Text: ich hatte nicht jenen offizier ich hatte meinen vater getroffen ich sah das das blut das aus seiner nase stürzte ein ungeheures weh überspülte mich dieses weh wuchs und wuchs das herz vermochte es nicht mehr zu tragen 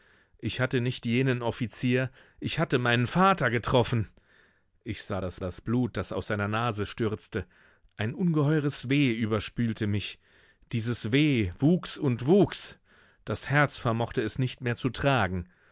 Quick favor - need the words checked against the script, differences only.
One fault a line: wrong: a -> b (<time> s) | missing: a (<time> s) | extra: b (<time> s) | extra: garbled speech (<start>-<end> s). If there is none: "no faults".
no faults